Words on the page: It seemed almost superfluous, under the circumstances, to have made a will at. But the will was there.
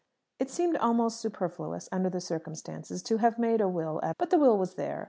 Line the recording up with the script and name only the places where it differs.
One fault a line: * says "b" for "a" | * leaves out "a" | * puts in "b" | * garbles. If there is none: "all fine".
all fine